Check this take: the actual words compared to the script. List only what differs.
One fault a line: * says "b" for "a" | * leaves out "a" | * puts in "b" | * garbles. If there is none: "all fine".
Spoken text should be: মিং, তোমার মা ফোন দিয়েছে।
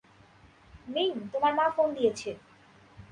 all fine